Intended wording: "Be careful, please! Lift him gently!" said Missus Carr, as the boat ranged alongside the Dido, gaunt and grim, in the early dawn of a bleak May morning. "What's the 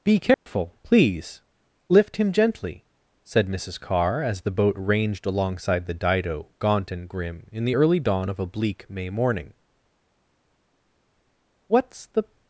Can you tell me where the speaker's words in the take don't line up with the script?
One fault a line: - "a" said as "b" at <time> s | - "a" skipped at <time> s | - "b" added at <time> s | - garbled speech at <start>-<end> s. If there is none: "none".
none